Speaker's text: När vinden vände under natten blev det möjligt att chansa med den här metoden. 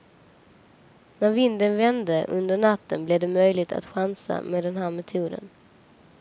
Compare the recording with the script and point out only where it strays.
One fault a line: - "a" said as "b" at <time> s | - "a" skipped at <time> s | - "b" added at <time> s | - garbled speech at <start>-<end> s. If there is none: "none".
none